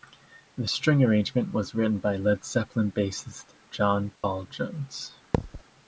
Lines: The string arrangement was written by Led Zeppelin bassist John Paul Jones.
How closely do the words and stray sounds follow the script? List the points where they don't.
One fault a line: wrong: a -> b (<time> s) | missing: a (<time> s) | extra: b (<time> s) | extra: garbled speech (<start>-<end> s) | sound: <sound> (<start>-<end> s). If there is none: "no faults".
sound: dropout (4.2-4.2 s)
sound: thud (5.3-5.6 s)